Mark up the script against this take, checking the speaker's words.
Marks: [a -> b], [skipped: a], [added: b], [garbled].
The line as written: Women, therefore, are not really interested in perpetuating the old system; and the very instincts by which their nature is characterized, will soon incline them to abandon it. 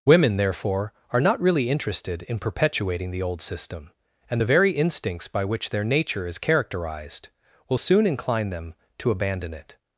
Women, therefore, are not really interested in perpetuating the old system; and the very instincts by which their nature is characterized, will soon incline them to abandon it.